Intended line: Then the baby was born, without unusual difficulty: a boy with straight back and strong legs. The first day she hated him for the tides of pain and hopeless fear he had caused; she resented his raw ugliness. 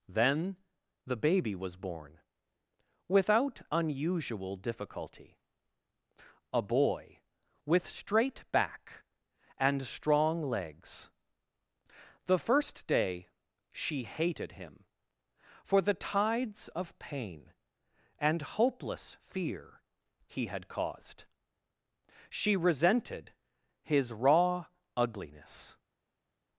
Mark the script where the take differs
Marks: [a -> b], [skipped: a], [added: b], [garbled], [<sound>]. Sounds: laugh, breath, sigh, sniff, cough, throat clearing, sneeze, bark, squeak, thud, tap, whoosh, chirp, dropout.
Then the baby was born, without unusual difficulty: a boy with straight back and strong legs. The first day she hated him for the tides of pain and hopeless fear he had caused; she resented his raw ugliness.